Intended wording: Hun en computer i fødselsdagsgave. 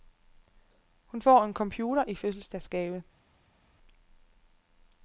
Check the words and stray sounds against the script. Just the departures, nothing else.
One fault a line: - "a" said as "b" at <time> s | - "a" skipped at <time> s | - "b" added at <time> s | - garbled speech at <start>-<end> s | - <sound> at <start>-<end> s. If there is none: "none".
- "får" added at 1.2 s